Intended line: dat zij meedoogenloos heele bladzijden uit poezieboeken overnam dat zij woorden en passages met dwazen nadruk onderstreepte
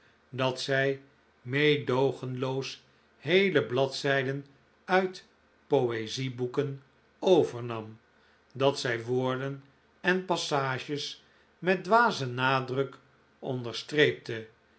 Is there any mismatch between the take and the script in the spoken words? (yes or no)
no